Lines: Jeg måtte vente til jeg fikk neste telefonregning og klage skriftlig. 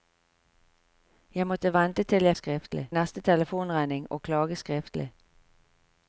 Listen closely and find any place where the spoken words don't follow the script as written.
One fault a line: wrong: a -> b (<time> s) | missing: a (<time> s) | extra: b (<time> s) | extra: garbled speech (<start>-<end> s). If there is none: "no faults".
wrong: fikk -> skriftlig (2.3 s)